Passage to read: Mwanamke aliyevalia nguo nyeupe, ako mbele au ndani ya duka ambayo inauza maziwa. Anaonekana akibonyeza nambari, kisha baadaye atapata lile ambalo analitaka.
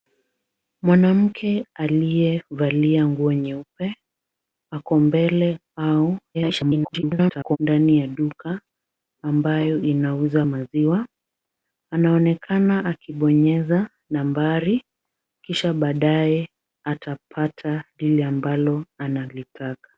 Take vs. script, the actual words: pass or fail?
fail